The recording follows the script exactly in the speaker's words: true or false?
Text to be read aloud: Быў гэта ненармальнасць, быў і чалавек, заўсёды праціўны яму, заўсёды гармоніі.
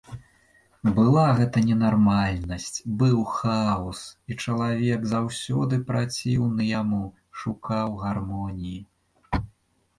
false